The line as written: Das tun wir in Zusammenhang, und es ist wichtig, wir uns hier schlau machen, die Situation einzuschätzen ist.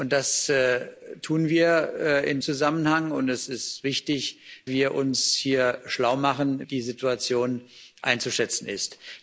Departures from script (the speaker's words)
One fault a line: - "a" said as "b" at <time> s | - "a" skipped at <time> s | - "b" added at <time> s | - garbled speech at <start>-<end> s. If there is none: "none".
none